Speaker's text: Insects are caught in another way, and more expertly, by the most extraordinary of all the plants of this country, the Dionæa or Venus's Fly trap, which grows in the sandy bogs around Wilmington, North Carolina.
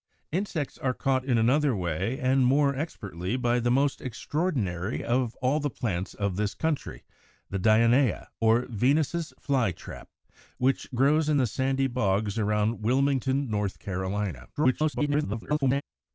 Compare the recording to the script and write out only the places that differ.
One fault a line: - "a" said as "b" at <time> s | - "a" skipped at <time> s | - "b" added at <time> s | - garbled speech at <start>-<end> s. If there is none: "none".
- garbled speech at 14.6-15.8 s